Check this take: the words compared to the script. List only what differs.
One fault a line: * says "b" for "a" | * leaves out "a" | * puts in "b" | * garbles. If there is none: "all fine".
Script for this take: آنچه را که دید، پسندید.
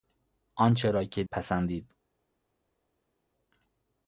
* leaves out "دید"